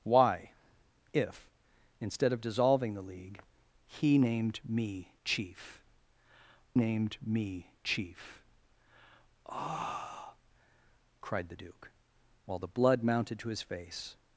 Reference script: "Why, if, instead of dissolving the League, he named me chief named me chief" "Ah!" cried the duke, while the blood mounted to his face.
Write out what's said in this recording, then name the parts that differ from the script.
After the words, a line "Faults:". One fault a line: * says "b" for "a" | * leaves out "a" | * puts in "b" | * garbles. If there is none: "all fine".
"Why, if, instead of dissolving the League, he named me chief named me chief" "Ah!" cried the duke, while the blood mounted to his face.
Faults:
all fine